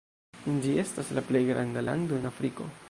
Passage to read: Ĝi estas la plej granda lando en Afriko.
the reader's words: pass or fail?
pass